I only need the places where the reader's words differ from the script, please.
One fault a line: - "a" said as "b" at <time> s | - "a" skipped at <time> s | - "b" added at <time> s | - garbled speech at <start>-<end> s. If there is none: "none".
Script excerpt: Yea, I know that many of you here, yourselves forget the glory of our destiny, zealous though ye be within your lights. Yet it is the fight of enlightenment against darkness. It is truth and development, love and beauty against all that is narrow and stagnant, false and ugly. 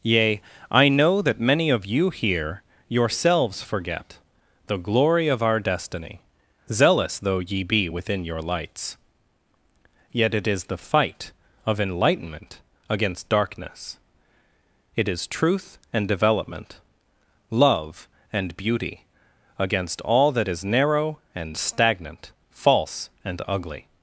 none